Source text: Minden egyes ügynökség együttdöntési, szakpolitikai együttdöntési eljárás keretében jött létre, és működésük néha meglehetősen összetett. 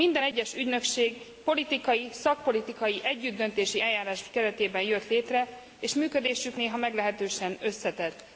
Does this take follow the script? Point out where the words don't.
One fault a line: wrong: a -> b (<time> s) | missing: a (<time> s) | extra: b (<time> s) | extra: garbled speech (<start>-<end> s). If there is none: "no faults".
wrong: együttdöntési -> politikai (1.4 s)